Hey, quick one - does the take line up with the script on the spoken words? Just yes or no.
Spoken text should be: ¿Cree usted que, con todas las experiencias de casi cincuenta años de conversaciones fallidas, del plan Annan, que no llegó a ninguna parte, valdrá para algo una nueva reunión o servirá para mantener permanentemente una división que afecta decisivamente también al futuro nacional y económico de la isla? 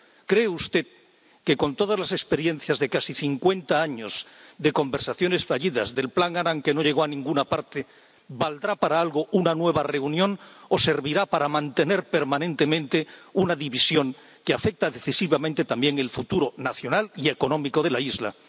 yes